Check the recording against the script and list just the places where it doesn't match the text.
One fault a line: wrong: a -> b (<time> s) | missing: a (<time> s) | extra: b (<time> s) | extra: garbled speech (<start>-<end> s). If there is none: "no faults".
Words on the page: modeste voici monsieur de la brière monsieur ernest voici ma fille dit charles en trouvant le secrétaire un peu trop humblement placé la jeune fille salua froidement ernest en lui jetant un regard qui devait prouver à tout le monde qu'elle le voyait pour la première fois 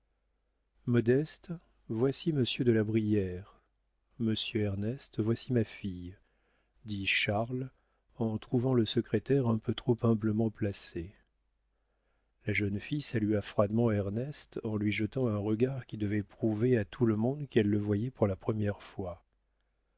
no faults